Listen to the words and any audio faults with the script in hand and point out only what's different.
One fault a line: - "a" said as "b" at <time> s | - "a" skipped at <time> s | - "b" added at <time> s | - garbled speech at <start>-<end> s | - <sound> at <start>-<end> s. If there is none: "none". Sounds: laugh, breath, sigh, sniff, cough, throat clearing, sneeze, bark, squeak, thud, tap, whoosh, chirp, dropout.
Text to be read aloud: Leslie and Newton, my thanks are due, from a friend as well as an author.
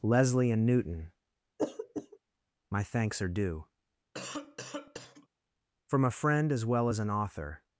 - throat clearing at 1.6-2.2 s
- cough at 4.1-5.3 s